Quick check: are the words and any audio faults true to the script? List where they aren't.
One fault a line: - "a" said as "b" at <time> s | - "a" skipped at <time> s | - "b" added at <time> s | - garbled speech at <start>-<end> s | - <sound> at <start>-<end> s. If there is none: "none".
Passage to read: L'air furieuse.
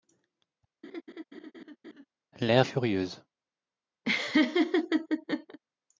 - laugh at 0.8-2.1 s
- laugh at 4.0-5.6 s